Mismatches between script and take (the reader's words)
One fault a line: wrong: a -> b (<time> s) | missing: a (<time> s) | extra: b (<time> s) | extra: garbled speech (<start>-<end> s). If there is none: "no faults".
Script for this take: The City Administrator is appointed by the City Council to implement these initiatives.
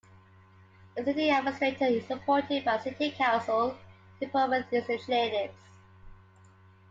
no faults